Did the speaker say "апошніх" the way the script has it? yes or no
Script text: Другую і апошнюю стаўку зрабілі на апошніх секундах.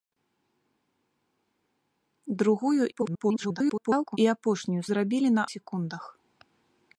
no